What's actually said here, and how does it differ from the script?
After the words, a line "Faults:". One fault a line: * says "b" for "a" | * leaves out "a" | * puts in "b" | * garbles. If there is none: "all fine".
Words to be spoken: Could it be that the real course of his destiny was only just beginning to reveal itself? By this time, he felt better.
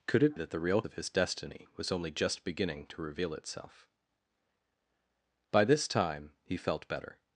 Could it that the real of his destiny was only just beginning to reveal itself? By this time, he felt better.
Faults:
* leaves out "be"
* leaves out "course"